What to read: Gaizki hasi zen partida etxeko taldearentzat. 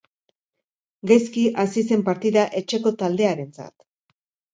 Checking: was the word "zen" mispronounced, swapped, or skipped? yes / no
no